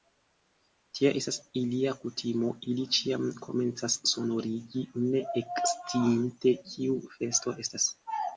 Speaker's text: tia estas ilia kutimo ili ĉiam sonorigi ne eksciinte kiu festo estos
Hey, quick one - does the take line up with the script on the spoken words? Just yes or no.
no